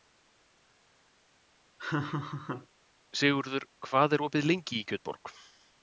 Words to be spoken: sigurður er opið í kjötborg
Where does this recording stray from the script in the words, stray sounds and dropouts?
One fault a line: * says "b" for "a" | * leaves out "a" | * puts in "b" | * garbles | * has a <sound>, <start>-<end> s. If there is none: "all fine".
* has a laugh, 1.8-2.7 s
* puts in "hvað"
* puts in "lengi"